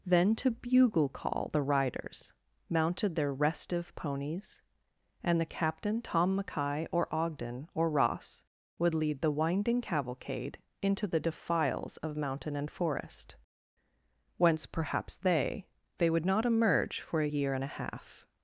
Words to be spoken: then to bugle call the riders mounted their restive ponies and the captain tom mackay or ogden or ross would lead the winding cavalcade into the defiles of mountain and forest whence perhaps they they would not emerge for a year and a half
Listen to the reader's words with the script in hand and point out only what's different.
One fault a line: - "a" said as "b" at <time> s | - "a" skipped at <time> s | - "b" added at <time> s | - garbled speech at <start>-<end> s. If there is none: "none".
none